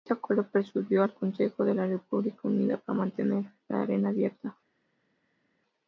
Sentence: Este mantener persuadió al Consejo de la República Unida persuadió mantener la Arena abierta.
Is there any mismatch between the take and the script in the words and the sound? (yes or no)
yes